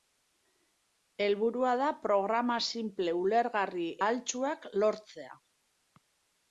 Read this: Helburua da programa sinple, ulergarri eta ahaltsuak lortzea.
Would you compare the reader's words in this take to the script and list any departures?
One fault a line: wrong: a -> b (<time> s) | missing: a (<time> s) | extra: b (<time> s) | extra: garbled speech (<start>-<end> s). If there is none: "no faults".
missing: eta (3.9 s)